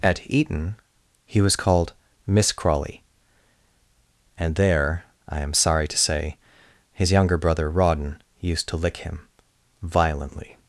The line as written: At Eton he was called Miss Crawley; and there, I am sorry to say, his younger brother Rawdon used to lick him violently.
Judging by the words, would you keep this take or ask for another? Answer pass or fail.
pass